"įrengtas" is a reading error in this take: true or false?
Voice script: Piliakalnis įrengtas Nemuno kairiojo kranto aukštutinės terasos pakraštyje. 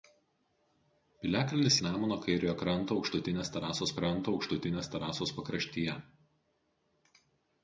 true